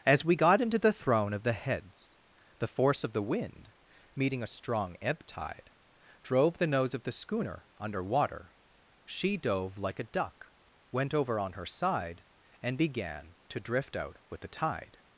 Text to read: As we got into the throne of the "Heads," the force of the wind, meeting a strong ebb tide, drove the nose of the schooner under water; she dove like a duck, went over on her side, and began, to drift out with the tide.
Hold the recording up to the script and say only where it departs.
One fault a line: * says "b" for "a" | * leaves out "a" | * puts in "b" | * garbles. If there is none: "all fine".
all fine